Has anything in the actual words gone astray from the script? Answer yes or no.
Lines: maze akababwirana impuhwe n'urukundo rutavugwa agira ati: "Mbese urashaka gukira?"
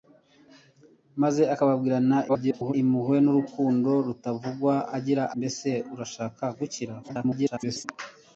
yes